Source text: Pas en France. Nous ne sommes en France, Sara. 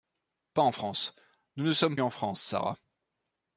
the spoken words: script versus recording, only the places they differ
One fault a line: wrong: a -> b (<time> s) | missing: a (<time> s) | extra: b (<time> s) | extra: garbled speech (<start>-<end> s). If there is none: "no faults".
no faults